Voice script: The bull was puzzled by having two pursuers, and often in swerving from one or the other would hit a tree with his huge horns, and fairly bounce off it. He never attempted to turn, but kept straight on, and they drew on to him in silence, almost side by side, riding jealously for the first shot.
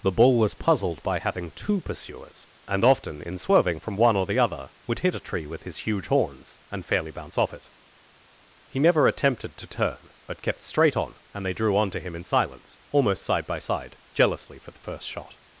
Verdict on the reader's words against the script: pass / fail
fail